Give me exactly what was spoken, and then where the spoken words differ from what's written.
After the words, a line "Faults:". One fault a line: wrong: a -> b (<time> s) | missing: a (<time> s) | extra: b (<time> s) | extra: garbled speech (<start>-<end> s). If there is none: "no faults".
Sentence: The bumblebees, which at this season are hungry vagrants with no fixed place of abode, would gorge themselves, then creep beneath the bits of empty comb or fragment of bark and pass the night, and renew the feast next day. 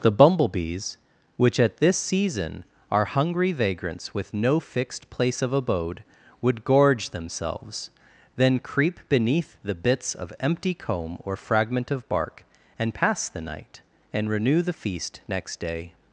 The bumblebees, which at this season are hungry vagrants with no fixed place of abode, would gorge themselves, then creep beneath the bits of empty comb or fragment of bark and pass the night, and renew the feast next day.
Faults:
no faults